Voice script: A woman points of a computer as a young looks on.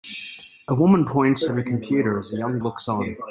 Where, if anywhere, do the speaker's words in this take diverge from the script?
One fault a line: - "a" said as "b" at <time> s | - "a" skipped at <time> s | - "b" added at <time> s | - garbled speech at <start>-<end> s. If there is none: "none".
none